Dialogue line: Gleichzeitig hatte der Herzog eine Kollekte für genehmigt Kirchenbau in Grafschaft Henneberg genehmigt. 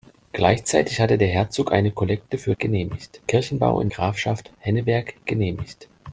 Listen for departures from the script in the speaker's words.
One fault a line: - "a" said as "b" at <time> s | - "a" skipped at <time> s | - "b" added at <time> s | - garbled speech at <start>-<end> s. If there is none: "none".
none